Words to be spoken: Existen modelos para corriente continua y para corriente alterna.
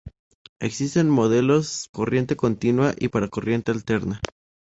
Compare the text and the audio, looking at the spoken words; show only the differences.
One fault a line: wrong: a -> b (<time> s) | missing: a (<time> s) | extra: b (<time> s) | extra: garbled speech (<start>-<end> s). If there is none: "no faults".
missing: para (1.9 s)